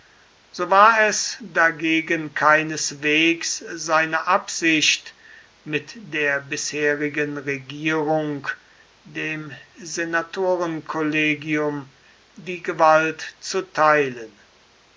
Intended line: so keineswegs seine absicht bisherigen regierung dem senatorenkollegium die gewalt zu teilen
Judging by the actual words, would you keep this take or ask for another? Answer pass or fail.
fail